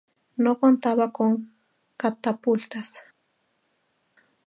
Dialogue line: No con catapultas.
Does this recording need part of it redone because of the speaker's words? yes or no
yes